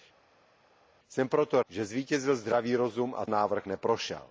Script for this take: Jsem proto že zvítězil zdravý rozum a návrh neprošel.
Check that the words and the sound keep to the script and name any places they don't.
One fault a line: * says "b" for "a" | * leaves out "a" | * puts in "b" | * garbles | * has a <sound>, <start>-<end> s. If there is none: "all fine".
all fine